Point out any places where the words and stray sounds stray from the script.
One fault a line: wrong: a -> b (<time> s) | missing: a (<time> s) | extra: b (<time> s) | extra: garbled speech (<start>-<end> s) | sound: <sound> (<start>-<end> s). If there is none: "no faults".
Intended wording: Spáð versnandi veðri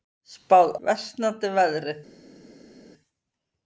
no faults